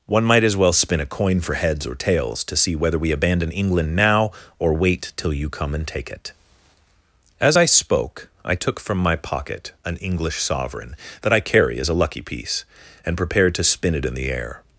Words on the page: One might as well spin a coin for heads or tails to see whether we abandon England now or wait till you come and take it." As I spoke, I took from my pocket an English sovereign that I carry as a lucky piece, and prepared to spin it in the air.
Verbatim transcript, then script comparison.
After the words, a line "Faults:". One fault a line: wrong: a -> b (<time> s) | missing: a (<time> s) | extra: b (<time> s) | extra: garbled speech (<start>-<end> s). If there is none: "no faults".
One might as well spin a coin for heads or tails to see whether we abandon England now or wait till you come and take it." As I spoke, I took from my pocket an English sovereign that I carry as a lucky piece, and prepared to spin it in the air.
Faults:
no faults